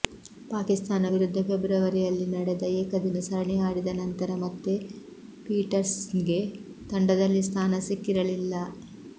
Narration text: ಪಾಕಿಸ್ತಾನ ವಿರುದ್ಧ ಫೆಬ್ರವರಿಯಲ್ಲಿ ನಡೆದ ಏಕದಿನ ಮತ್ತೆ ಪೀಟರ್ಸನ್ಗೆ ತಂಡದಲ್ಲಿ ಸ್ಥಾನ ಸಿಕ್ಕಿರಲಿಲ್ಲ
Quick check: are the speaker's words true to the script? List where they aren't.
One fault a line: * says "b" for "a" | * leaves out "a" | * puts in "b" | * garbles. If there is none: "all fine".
* puts in "ಸರಣಿ ಆಡಿದ ನಂತರ"